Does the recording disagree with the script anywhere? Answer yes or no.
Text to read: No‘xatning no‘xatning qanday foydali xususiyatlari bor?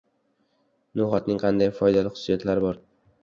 yes